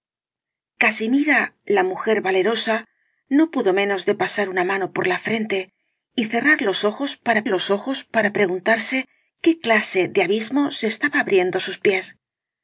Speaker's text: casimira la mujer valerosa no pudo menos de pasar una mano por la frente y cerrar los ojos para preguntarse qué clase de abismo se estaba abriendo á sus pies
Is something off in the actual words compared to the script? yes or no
yes